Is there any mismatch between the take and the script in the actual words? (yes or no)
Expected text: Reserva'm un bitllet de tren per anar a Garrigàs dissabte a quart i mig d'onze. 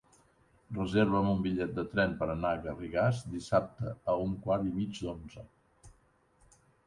yes